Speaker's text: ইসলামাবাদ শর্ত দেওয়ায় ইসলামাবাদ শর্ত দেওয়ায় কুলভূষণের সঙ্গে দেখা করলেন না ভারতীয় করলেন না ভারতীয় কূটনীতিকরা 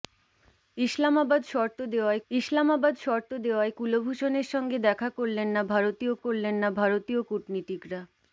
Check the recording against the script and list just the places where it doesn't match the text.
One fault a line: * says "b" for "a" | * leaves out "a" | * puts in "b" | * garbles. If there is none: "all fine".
all fine